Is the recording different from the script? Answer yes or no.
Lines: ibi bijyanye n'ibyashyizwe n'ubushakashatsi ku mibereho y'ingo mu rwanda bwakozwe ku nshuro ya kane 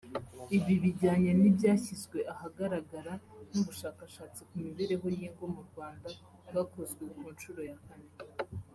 yes